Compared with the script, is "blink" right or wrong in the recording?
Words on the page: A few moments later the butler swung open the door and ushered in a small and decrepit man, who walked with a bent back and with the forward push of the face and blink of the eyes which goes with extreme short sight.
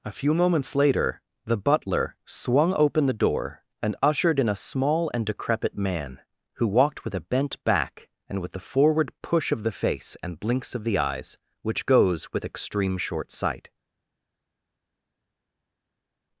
wrong